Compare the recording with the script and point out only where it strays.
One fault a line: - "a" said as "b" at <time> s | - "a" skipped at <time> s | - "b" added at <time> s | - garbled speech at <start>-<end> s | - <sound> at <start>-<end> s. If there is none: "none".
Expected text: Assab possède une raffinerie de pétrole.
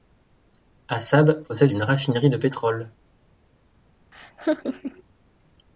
- laugh at 4.1-5.0 s